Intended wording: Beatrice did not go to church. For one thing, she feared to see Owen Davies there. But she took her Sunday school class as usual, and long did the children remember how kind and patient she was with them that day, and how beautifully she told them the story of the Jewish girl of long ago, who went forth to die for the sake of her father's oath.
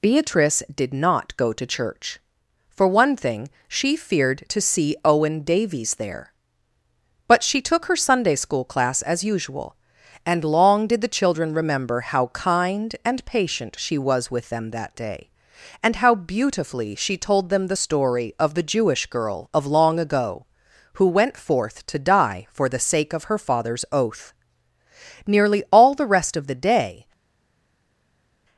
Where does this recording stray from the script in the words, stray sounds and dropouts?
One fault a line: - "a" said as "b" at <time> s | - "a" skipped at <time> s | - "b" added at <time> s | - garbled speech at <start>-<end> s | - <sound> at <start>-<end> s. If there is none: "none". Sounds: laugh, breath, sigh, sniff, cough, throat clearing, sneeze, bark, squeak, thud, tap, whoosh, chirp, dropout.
- "Nearly all the rest of the day" added at 25.3 s